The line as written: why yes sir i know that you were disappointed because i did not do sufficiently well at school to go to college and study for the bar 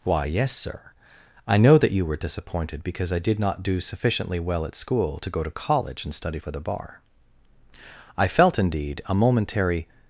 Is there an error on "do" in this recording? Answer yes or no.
no